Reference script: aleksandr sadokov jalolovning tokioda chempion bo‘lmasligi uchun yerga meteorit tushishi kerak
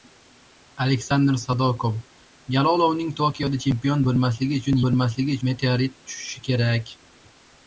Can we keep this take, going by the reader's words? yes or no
no